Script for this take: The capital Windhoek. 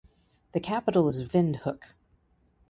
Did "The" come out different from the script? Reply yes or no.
no